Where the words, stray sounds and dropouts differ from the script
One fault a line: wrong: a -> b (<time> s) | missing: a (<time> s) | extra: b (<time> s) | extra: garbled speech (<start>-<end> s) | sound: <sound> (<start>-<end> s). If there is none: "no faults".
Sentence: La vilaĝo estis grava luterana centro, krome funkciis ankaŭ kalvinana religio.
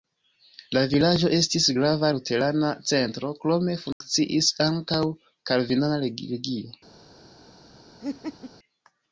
sound: dropout (3.9-4.0 s)
sound: laugh (8.0-8.5 s)